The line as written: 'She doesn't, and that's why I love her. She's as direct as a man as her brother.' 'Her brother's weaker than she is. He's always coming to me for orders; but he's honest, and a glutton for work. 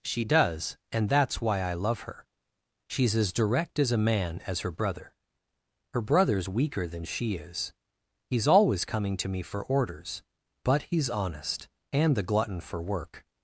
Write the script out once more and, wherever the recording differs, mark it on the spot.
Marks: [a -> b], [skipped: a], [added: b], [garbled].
'She [doesn't, -> does] and that's why I love her. She's as direct as a man as her brother.' 'Her brother's weaker than she is. He's always coming to me for orders; but he's honest, and [a -> the] glutton for work.